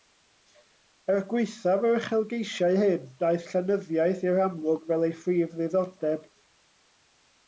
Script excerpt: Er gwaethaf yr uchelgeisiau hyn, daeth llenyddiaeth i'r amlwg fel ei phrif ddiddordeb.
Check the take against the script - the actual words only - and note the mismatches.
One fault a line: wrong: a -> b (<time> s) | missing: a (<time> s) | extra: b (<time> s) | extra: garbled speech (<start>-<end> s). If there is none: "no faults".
no faults